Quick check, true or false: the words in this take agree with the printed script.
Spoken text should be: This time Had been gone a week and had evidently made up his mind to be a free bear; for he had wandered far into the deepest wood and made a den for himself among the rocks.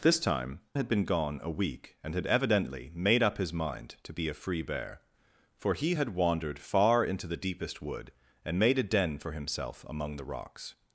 true